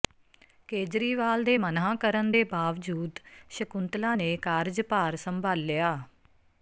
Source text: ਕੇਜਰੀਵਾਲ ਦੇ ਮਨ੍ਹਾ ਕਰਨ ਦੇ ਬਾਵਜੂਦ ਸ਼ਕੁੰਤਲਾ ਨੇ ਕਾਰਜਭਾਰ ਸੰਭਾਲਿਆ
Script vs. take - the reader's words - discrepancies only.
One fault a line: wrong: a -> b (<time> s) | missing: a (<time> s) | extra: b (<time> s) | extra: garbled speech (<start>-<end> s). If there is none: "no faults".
no faults